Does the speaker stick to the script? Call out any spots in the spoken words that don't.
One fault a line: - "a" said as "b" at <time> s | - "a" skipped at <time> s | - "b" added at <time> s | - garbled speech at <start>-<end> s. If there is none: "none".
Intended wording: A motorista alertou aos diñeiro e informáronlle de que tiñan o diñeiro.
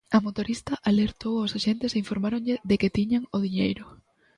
- "diñeiro" said as "axentes" at 1.6 s